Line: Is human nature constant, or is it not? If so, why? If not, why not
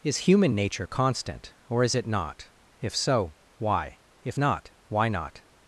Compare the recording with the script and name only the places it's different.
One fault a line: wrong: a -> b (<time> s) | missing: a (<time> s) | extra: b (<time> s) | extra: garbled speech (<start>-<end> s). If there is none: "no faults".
no faults